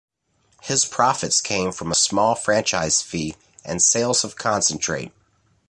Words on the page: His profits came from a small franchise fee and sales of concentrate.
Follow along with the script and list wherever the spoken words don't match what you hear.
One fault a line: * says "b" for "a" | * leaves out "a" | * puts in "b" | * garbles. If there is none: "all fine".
all fine